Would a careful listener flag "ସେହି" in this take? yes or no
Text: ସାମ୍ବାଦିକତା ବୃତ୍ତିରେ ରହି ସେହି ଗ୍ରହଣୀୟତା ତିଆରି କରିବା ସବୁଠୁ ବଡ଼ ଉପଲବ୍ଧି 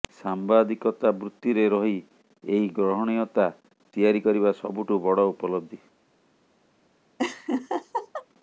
yes